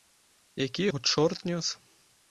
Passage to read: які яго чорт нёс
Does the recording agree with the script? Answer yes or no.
yes